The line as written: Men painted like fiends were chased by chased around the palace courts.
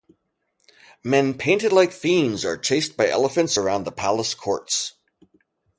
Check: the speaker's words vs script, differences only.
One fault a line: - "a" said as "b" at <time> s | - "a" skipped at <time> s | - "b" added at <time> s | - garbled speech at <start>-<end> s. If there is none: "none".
- "were" said as "are" at 2.4 s
- "chased" said as "elephants" at 3.1 s